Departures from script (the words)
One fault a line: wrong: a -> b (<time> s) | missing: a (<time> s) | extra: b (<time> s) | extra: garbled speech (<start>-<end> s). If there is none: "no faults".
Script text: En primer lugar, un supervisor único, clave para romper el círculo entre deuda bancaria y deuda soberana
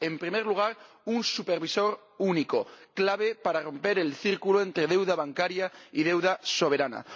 no faults